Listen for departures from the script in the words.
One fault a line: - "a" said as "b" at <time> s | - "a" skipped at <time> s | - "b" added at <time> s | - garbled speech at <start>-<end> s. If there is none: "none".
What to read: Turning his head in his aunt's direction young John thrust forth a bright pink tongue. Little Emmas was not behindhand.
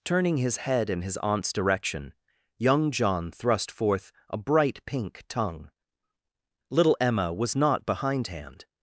- "Emmas" said as "Emma" at 7.0 s